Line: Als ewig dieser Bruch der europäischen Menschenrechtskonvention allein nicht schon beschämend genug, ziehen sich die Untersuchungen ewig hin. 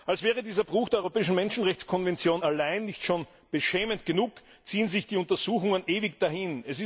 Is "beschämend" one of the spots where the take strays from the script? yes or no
no